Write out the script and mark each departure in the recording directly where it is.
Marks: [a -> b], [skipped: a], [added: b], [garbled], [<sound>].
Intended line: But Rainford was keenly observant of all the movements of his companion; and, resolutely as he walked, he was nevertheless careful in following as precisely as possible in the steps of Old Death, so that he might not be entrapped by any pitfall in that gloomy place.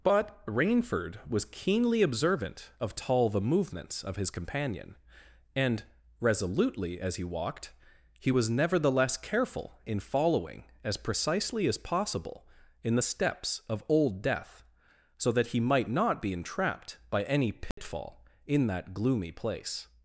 But Rainford was keenly observant of [all -> tall] the movements of his companion; and, resolutely as he walked, he was nevertheless careful in following as precisely as possible in the steps of Old Death, so that he might not be entrapped by any pitfall [dropout] in that gloomy place.